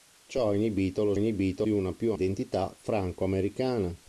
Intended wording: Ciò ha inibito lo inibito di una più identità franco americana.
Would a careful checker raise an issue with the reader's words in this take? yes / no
no